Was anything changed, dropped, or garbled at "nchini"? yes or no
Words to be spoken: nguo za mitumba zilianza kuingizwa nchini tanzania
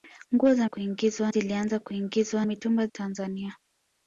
yes